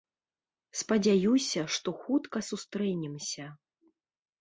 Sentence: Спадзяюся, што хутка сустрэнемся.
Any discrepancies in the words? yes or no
no